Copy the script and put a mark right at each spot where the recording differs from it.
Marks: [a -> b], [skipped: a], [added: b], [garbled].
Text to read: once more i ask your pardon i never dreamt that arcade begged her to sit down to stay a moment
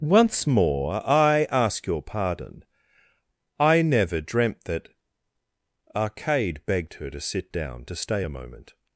once more i ask your pardon i never dreamt that arcade begged her to sit down to stay a moment